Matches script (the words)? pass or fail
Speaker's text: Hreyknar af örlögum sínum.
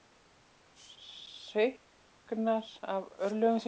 pass